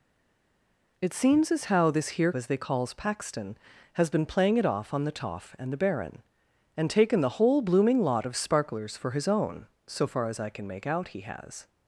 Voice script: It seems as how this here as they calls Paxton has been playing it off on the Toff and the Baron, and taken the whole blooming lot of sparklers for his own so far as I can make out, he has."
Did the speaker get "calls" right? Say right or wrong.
right